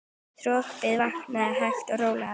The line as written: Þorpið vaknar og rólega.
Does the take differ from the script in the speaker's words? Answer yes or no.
yes